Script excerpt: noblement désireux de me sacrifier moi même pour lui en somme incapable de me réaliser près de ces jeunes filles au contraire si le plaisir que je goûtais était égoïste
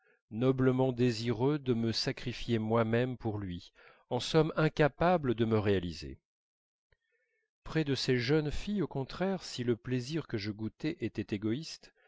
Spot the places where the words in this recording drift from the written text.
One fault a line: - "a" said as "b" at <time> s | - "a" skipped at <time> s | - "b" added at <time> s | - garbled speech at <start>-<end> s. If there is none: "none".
none